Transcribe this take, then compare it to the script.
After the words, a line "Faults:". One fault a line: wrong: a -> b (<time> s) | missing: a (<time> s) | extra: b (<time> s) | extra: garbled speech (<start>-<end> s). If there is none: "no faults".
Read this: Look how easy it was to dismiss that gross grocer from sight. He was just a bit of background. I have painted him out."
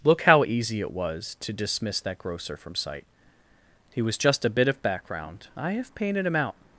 Look how easy it was to dismiss that grocer from sight. He was just a bit of background. I have painted him out."
Faults:
missing: gross (2.2 s)